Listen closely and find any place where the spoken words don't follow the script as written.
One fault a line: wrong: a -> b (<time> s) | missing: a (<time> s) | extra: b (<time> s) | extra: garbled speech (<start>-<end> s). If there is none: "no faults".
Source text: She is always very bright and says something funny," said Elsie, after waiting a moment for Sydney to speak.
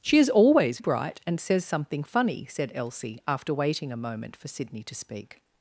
missing: very (0.8 s)